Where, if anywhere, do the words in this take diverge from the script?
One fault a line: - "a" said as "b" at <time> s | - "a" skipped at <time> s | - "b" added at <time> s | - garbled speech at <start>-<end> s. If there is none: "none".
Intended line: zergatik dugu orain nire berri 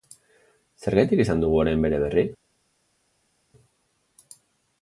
- "izan" added at 1.2 s
- "nire" said as "bere" at 1.9 s